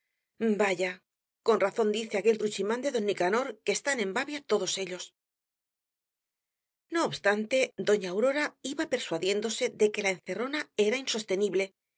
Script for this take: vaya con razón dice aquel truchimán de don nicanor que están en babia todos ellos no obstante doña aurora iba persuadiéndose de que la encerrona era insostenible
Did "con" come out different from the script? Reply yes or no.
no